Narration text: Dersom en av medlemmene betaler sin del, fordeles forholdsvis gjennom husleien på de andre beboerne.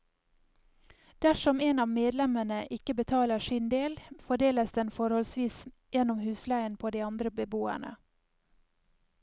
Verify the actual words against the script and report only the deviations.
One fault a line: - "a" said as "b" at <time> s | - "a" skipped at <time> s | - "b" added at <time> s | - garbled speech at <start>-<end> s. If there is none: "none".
- "ikke" added at 2.8 s
- "den" added at 4.8 s